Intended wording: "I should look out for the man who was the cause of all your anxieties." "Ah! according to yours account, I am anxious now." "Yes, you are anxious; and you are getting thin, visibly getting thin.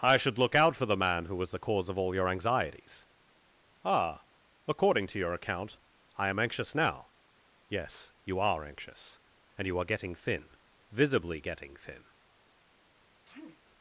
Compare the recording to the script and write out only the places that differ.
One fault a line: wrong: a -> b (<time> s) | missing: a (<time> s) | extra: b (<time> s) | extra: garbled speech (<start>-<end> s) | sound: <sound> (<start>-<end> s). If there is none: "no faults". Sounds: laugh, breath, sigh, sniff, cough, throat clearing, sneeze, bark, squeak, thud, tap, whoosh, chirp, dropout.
wrong: yours -> your (5.2 s)
sound: sneeze (13.2-13.6 s)